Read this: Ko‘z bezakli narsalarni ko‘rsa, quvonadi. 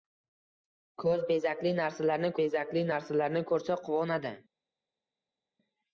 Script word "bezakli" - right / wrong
right